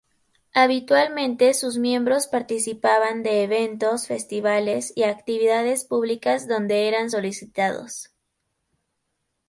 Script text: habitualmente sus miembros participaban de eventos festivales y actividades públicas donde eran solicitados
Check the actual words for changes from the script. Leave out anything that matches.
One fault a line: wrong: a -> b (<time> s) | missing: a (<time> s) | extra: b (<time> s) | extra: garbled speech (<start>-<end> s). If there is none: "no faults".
no faults